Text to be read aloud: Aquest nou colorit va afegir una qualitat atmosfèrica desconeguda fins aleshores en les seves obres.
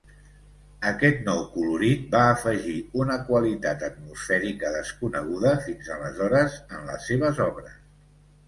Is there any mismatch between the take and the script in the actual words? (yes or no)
no